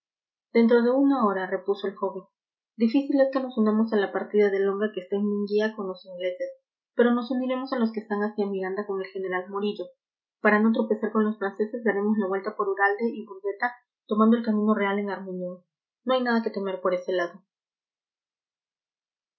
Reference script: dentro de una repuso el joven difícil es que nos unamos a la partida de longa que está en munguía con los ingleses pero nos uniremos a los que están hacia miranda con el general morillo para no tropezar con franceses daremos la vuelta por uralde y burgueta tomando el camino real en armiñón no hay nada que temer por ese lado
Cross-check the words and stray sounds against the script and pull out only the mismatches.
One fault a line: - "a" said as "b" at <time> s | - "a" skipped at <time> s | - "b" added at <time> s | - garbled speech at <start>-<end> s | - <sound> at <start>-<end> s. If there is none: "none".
- "hora" added at 1.3 s
- "los" added at 11.3 s